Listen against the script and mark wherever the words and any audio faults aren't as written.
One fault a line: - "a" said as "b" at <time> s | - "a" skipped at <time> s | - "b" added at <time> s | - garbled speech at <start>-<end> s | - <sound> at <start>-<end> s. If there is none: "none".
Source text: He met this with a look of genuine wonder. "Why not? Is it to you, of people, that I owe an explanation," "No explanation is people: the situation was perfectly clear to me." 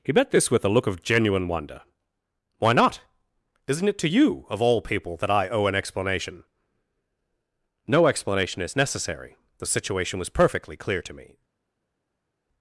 - "Is" said as "Isn't" at 3.7 s
- "all" added at 4.6 s
- "people" said as "necessary" at 8.8 s